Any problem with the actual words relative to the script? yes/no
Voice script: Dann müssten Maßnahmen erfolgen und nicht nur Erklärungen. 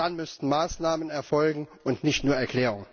no